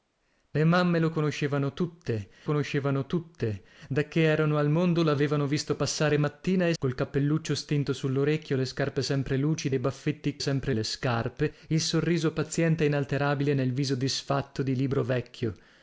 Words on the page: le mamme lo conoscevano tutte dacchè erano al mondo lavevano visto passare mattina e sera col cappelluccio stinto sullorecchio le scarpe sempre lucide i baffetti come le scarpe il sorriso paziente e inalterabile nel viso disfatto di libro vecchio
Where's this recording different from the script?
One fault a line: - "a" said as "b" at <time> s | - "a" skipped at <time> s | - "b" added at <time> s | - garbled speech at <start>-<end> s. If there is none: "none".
- "conoscevano tutte" added at 2.4 s
- "sera" skipped at 6.7 s
- "come" said as "sempre" at 10.4 s